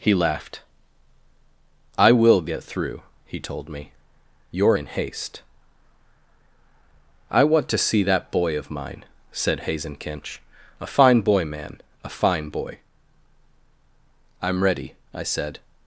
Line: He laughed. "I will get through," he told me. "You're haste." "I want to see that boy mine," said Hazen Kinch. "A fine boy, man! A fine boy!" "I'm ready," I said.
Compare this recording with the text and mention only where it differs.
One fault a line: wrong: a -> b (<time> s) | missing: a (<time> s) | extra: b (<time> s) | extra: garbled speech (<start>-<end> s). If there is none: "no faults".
extra: in (4.7 s)
extra: of (8.6 s)